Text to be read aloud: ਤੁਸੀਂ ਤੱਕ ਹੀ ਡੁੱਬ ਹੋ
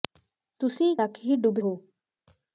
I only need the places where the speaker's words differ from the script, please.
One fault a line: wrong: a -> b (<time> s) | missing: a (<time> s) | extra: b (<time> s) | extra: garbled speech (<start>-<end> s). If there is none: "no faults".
no faults